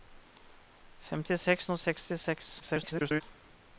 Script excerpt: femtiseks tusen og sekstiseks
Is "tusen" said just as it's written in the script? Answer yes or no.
no